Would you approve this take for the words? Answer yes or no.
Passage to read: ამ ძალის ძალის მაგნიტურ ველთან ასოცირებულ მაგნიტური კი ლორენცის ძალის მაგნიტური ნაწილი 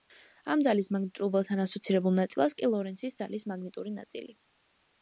no